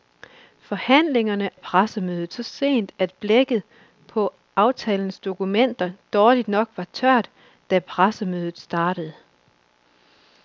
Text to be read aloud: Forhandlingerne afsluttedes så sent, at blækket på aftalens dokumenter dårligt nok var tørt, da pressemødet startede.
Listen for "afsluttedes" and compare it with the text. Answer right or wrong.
wrong